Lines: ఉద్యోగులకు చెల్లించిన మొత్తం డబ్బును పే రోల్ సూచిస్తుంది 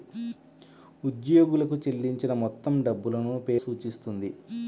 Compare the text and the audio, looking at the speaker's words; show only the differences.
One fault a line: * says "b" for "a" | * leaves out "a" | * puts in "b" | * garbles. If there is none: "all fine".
* leaves out "రోల్"